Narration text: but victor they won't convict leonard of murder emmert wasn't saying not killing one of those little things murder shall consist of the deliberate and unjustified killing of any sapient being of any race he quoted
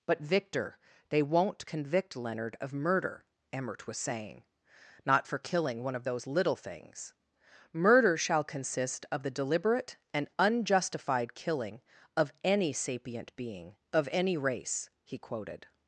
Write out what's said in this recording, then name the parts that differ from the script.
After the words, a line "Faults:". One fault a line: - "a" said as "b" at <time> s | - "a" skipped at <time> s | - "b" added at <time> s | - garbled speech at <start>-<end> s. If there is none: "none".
but victor they won't convict leonard of murder emmert was saying not for killing one of those little things murder shall consist of the deliberate and unjustified killing of any sapient being of any race he quoted
Faults:
- "wasn't" said as "was" at 3.9 s
- "for" added at 5.3 s